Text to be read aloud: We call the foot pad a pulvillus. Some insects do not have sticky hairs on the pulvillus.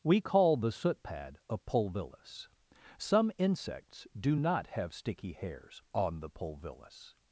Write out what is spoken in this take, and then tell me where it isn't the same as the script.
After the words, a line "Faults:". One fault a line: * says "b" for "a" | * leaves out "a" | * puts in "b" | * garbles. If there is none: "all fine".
We call the soot pad a pulvillus. Some insects do not have sticky hairs on the pulvillus.
Faults:
* says "soot" for "foot"